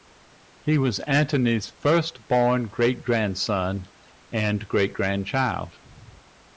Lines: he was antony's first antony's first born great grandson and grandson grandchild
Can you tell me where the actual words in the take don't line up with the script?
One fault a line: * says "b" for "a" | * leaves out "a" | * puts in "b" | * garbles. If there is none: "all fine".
* leaves out "antony's first"
* says "great" for "grandson"